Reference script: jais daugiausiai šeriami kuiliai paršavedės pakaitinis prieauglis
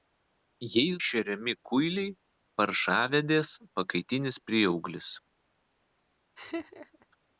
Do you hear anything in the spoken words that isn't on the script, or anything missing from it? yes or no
yes